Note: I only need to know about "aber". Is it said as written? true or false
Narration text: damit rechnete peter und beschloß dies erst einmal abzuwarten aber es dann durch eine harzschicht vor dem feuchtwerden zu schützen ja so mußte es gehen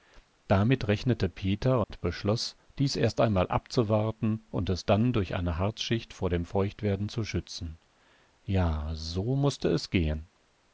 false